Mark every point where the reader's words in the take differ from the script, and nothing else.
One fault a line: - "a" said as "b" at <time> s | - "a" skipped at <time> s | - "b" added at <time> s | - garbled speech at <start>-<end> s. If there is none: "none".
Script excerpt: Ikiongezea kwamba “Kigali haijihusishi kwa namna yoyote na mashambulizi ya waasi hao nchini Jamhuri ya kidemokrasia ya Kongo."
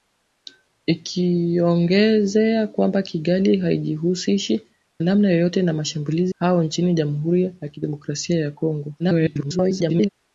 - "kwa" skipped at 4.6 s
- "ya waasi" skipped at 6.3 s
- garbled speech at 9.0-10.1 s